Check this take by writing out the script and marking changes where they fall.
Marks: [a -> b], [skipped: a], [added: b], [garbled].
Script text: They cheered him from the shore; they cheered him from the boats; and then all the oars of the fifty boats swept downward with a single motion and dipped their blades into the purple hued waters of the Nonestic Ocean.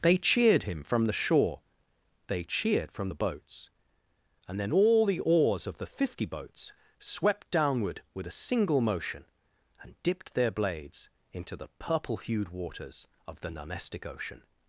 They cheered him from the shore; they cheered [skipped: him] from the boats; and then all the oars of the fifty boats swept downward with a single motion and dipped their blades into the purple hued waters of the Nonestic Ocean.